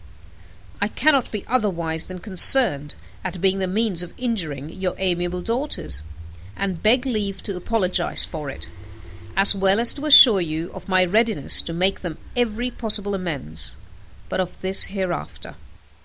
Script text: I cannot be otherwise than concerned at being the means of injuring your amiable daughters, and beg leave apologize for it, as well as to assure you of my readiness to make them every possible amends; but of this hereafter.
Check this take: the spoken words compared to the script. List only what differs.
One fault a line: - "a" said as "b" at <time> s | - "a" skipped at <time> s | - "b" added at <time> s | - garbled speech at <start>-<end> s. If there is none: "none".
- "to" added at 7.4 s